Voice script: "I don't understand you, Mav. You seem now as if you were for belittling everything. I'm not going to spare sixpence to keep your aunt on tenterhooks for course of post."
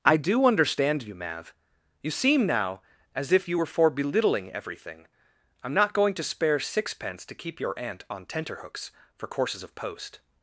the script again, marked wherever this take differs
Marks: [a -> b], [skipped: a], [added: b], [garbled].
"I [don't -> do] understand you, Mav. You seem now as if you were for belittling everything. I'm not going to spare sixpence to keep your aunt on tenterhooks for [course -> courses] of post."